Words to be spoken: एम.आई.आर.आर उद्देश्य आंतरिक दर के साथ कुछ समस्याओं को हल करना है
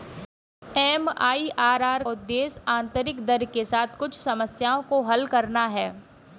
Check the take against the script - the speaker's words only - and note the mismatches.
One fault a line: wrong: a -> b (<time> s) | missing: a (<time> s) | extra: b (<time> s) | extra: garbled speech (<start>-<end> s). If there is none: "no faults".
no faults